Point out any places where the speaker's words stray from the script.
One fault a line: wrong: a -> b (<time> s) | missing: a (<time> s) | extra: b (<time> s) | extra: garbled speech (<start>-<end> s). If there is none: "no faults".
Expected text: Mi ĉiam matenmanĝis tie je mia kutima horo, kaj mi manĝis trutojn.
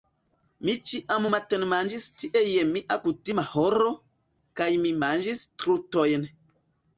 no faults